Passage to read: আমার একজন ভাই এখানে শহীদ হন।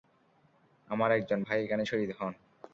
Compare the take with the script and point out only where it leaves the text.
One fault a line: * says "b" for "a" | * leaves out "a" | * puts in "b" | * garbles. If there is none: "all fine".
all fine